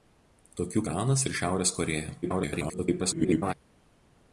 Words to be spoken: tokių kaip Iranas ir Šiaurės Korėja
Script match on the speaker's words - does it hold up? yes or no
no